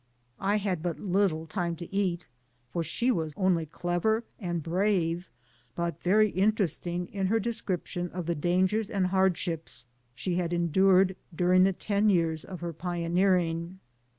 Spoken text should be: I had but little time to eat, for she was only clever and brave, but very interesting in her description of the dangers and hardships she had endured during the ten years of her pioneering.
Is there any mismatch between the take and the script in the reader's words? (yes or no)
no